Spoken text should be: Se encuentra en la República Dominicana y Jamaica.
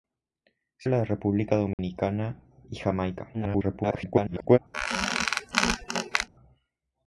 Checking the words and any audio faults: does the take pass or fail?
fail